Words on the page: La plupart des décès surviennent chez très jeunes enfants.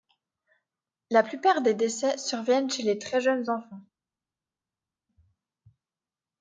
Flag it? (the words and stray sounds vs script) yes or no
yes